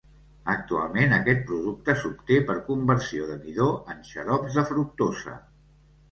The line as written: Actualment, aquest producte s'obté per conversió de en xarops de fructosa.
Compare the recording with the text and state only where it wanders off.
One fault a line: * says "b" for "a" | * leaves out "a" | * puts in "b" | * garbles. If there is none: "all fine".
* puts in "midó"